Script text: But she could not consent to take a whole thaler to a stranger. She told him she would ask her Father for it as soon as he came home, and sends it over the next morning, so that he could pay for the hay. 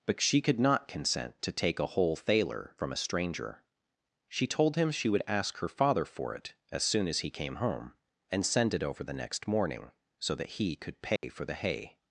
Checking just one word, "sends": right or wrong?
wrong